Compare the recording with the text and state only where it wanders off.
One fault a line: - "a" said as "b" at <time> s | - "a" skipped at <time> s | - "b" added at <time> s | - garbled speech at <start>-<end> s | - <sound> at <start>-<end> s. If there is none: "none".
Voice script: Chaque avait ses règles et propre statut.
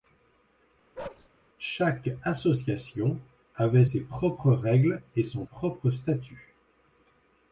- bark at 0.9-1.3 s
- "association" added at 2.2 s
- "propres" added at 4.0 s
- "son" added at 5.2 s